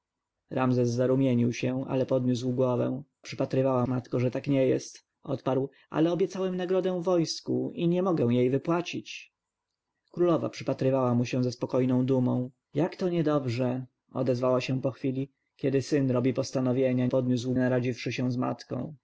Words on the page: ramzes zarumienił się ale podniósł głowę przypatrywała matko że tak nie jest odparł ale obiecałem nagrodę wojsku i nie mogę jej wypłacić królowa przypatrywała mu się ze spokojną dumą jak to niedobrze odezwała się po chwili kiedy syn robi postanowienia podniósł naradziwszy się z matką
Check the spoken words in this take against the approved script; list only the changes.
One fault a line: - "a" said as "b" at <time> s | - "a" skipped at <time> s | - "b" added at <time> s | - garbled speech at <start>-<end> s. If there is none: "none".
none